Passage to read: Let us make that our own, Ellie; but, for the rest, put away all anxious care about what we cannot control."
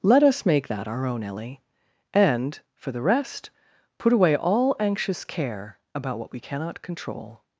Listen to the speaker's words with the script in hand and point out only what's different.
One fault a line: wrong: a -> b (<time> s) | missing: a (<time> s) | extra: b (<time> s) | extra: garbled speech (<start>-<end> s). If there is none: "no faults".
wrong: but -> and (2.1 s)